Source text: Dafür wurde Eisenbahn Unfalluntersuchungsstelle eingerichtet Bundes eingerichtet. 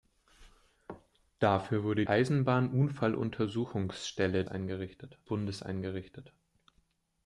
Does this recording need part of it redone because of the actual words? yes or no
no